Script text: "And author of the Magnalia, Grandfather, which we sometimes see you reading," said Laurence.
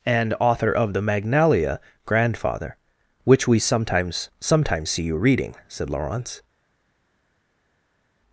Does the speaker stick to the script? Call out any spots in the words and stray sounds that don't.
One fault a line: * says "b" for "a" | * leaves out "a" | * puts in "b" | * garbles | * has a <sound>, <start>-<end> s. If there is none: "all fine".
* puts in "sometimes"